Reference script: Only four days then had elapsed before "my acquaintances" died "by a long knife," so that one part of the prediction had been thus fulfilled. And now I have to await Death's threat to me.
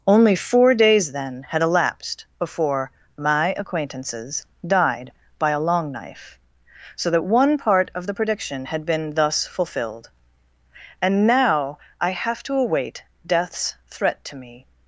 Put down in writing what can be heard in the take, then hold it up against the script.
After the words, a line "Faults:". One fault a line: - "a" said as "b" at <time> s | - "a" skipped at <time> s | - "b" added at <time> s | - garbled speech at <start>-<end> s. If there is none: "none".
Only four days then had elapsed before "my acquaintances" died "by a long knife," so that one part of the prediction had been thus fulfilled. And now I have to await Death's threat to me.
Faults:
none